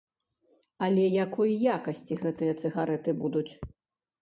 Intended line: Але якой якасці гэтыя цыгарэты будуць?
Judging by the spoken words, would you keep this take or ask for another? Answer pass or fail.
pass